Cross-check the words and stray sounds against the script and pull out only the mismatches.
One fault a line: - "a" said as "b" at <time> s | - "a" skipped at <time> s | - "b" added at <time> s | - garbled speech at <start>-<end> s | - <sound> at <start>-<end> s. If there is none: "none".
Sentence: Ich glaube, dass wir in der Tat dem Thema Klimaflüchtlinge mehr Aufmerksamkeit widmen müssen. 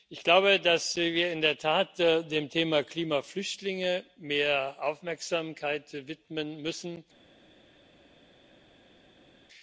none